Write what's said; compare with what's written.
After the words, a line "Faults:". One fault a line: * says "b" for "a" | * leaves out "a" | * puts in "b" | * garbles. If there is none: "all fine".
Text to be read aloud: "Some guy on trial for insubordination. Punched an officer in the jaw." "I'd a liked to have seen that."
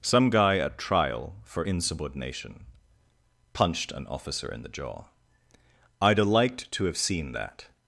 "Some guy at trial for insubordination. Punched an officer in the jaw." "I'd a liked to have seen that."
Faults:
* says "at" for "on"